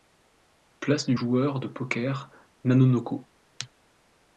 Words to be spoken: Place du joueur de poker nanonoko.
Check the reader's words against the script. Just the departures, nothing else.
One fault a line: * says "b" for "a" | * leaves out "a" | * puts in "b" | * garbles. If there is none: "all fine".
all fine